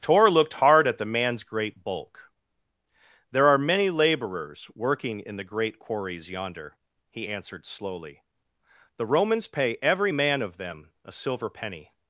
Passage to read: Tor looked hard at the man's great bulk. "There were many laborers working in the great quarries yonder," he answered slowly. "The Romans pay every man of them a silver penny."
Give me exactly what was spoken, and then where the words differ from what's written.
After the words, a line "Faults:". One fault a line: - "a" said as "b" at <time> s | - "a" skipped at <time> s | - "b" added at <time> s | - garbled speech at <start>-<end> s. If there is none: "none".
Tor looked hard at the man's great bulk. "There are many laborers working in the great quarries yonder," he answered slowly. "The Romans pay every man of them a silver penny."
Faults:
- "were" said as "are" at 3.5 s